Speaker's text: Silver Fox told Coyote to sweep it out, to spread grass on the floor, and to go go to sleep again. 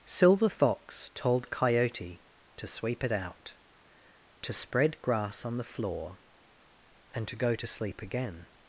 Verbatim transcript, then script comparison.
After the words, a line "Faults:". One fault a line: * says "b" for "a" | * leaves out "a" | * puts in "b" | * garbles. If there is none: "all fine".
Silver Fox told Coyote to sweep it out, to spread grass on the floor, and to go to sleep again.
Faults:
* leaves out "go"